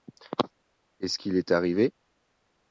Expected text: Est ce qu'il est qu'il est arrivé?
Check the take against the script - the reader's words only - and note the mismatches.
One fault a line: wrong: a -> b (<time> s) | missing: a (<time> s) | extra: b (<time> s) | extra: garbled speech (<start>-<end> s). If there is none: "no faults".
missing: qu'il est (1.5 s)